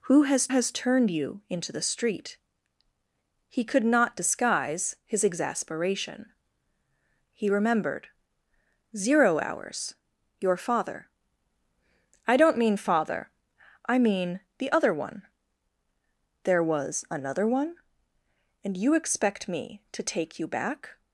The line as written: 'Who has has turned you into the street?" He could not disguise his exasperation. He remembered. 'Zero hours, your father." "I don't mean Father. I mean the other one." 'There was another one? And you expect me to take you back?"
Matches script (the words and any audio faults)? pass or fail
pass